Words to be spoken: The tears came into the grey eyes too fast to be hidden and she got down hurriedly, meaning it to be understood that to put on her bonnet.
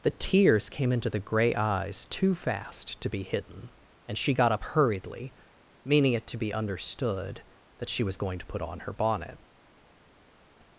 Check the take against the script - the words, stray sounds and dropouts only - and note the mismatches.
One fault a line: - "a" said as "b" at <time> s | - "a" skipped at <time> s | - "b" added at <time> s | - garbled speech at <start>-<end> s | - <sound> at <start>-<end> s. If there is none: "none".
- "down" said as "up" at 4.5 s
- "she was going" added at 7.9 s